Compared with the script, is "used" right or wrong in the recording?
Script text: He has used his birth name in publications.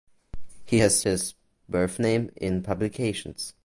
wrong